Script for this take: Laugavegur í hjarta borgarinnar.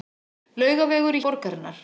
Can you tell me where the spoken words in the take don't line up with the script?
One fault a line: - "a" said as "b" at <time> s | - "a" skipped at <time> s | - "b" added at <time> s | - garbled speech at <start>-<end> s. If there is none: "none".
- "hjarta" skipped at 1.2 s